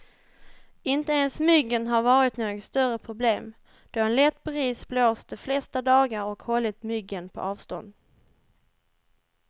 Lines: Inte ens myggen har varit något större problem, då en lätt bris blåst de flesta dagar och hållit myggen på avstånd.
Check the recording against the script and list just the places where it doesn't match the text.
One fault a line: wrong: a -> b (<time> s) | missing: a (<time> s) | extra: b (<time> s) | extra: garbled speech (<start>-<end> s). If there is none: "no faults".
no faults